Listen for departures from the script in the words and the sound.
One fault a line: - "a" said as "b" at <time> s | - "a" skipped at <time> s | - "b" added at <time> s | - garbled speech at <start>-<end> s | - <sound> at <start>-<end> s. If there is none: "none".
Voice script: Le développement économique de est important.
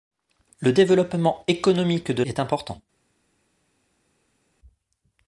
none